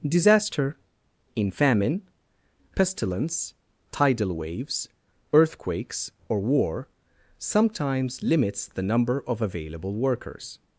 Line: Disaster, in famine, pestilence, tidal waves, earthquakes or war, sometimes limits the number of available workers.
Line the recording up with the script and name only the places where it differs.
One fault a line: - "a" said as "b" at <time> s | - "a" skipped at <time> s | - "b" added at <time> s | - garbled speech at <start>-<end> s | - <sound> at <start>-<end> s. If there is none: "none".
none